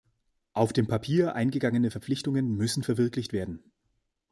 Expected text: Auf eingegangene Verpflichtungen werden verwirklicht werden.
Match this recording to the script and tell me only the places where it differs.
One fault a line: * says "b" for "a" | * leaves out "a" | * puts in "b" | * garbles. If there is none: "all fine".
* puts in "dem Papier"
* says "müssen" for "werden"